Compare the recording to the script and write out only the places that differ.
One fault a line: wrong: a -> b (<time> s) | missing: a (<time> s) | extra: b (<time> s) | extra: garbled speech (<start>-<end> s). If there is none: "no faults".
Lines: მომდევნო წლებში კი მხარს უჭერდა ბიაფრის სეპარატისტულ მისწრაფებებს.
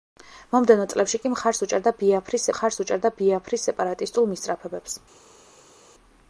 extra: მხარს უჭერდა ბიაფრის (2.5 s)